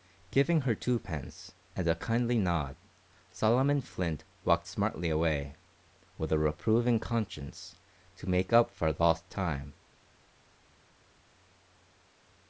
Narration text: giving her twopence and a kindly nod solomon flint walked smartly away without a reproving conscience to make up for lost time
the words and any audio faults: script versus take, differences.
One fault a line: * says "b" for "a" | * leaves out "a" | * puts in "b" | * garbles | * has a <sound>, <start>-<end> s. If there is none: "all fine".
* says "with" for "without"